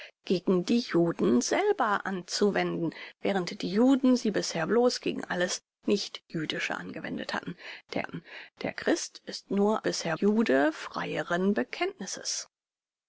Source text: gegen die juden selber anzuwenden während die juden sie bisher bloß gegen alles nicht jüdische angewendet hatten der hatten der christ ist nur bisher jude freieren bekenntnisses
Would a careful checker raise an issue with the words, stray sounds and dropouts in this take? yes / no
no